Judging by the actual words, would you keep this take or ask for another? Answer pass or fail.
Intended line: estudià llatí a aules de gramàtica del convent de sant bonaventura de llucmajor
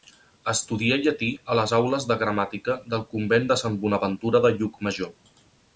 fail